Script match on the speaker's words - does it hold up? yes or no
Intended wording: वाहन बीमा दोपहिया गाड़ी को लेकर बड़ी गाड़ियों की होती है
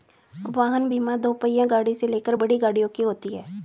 no